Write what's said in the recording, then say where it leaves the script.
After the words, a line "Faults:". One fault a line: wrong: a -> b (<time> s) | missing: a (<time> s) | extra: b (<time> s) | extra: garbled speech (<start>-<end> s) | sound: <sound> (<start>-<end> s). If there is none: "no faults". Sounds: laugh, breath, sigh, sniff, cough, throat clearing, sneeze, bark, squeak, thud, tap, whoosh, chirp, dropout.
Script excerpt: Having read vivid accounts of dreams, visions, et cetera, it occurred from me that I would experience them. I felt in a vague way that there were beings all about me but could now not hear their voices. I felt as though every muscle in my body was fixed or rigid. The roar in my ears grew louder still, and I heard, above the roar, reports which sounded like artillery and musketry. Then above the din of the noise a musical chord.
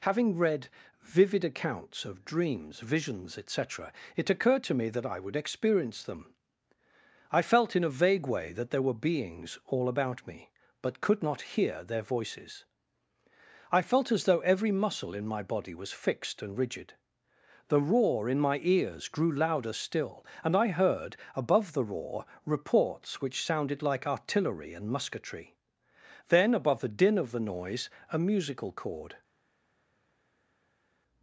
Having read vivid accounts of dreams, visions, et cetera, it occurred to me that I would experience them. I felt in a vague way that there were beings all about me but could not hear their voices. I felt as though every muscle in my body was fixed and rigid. The roar in my ears grew louder still, and I heard, above the roar, reports which sounded like artillery and musketry. Then above the din of the noise a musical chord.
Faults:
wrong: from -> to (4.6 s)
missing: now (11.2 s)
wrong: or -> and (16.4 s)